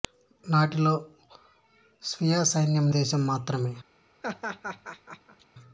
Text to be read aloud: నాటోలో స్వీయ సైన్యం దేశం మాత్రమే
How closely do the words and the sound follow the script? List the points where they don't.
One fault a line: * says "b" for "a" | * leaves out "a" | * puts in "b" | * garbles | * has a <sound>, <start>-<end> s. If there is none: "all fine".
* has a laugh, 4.2-5.5 s